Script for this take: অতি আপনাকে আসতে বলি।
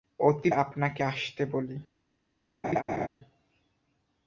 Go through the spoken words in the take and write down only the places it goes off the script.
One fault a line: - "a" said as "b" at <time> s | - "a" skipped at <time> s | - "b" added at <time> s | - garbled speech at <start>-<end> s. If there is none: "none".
none